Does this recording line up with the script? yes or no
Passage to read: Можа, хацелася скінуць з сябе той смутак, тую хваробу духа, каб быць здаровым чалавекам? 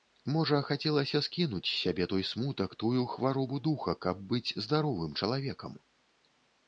yes